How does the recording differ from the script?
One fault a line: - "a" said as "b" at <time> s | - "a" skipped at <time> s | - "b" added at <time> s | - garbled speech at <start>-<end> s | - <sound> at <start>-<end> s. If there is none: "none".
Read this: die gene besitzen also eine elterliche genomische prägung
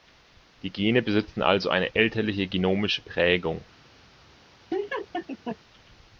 - laugh at 4.7-5.6 s